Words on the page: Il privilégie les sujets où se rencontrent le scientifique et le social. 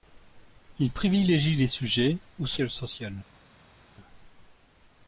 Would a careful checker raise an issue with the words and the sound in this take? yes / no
yes